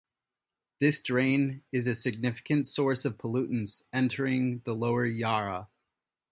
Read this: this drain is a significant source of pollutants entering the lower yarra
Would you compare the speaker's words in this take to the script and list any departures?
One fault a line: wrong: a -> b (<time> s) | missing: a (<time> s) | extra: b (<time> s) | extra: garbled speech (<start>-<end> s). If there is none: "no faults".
no faults